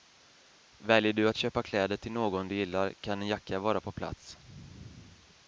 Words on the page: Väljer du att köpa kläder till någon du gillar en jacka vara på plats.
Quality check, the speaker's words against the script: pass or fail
fail